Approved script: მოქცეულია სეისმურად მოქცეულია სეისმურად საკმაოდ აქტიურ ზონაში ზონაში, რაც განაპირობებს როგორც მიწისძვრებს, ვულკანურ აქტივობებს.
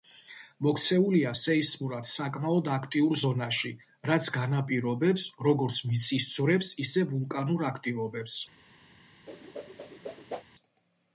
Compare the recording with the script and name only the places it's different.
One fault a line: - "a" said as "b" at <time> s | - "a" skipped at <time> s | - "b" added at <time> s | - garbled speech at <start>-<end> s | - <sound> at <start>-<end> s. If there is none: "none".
- "მოქცეულია სეისმურად" skipped at 2.1 s
- "ზონაში" skipped at 3.7 s
- "ისე" added at 6.9 s
- whoosh at 9.3-10.4 s